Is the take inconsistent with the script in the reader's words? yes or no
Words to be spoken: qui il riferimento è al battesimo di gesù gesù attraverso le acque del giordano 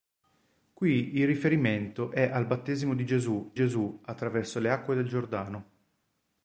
no